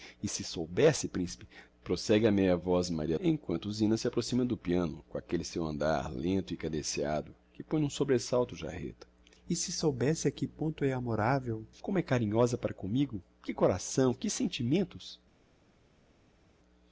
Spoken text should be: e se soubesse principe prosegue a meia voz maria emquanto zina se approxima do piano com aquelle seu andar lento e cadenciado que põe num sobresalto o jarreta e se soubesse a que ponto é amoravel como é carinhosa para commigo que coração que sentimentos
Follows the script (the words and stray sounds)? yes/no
yes